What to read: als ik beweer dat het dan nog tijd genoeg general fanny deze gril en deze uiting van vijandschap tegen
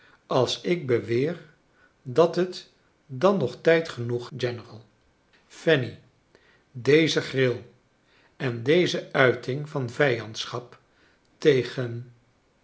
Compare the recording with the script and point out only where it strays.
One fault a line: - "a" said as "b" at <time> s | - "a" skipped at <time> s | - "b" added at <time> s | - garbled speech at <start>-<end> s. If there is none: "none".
none